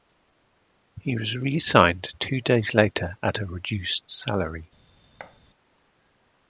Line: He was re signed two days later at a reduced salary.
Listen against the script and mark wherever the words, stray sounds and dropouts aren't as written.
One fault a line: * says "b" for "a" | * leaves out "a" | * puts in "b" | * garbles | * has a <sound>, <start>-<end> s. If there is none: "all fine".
* has a thud, 5.2-5.4 s